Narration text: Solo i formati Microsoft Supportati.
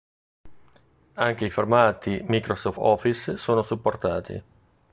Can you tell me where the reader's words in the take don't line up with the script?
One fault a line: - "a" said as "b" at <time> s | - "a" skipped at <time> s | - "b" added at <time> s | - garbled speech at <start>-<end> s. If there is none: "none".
- "Solo" said as "Anche" at 1.1 s
- "Office sono" added at 2.8 s